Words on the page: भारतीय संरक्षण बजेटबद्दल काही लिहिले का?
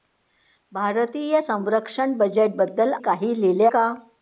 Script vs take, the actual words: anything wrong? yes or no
no